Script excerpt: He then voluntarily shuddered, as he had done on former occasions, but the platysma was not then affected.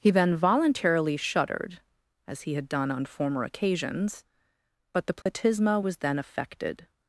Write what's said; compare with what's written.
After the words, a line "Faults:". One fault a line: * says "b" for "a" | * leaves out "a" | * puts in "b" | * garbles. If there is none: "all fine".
He then voluntarily shuddered, as he had done on former occasions, but the platysma was then affected.
Faults:
* leaves out "not"